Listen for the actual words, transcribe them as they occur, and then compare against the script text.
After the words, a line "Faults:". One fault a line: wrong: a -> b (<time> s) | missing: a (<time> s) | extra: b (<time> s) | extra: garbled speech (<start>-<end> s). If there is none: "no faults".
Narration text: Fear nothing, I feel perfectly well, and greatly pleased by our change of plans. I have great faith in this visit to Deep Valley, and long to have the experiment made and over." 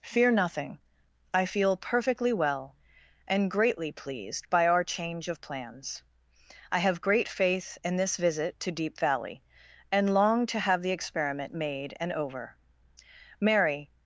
Fear nothing, I feel perfectly well, and greatly pleased by our change of plans. I have great faith in this visit to Deep Valley, and long to have the experiment made and over." Mary
Faults:
extra: Mary (13.4 s)